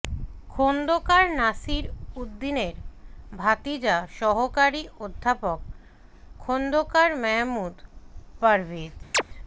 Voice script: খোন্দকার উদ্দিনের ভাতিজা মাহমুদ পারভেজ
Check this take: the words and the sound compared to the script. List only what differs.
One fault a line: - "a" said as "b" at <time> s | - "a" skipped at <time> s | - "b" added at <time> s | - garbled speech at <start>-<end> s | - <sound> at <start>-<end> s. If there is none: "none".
- "নাসির" added at 1.4 s
- "সহকারী অধ্যাপক খোন্দকার" added at 4.2 s
- chirp at 9.1-9.2 s